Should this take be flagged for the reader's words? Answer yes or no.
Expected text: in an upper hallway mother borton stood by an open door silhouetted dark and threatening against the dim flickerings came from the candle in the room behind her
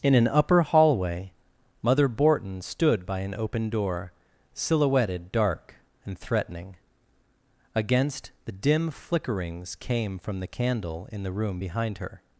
no